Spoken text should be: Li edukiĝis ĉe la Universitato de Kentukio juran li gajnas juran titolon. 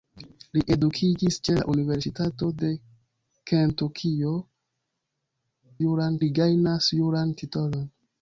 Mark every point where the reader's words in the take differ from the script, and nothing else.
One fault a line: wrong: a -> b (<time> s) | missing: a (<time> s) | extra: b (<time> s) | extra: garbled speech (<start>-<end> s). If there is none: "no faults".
no faults